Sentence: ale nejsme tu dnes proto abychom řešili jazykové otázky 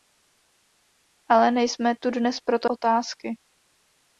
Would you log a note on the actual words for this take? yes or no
yes